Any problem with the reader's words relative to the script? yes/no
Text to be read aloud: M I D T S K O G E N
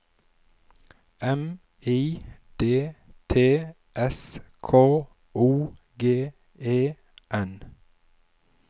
no